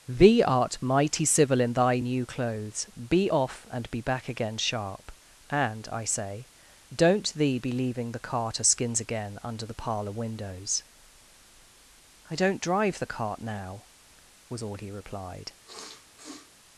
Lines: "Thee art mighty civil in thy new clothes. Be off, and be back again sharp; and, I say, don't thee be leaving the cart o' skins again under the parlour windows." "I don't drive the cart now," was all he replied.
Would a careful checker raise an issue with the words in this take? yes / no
no